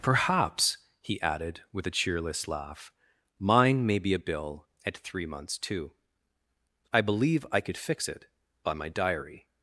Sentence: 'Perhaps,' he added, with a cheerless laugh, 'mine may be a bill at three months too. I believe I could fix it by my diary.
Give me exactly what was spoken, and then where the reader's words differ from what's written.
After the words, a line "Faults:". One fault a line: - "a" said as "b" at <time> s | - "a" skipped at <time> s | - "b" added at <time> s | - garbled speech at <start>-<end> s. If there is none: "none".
'Perhaps,' he added, with a cheerless laugh, 'mine may be a bill at three months too. I believe I could fix it by my diary.
Faults:
none